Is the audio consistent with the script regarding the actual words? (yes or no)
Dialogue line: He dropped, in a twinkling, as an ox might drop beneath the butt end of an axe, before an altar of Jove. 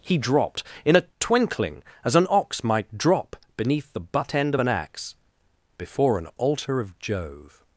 yes